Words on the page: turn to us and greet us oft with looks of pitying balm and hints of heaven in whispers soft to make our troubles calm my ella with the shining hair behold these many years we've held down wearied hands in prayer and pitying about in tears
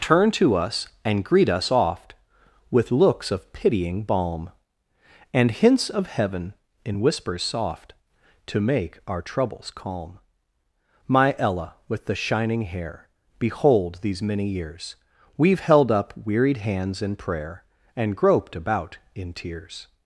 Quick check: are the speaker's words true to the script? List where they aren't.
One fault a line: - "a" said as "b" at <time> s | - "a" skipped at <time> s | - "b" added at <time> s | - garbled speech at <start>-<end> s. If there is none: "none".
- "down" said as "up" at 15.9 s
- "pitying" said as "groped" at 18.2 s